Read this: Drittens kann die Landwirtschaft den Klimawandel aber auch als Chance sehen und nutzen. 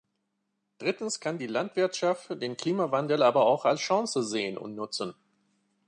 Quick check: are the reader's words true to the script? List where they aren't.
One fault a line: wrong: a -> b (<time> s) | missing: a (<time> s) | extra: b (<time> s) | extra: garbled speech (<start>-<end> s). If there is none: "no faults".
no faults